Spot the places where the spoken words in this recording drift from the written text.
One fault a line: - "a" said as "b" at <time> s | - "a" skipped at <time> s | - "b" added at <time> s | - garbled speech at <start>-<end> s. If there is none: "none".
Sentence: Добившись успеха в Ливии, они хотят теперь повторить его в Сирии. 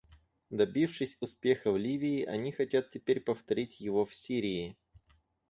none